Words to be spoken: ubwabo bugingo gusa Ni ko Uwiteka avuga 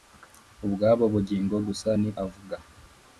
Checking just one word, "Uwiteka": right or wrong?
wrong